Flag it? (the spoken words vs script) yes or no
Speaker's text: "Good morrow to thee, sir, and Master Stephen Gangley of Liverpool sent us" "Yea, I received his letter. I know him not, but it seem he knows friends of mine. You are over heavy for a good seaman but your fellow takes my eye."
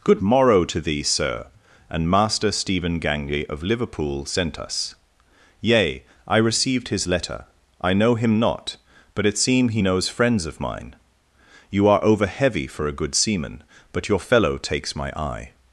no